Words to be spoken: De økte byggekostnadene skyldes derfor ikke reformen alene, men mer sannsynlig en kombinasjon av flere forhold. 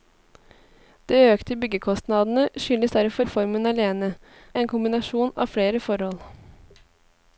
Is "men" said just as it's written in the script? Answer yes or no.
no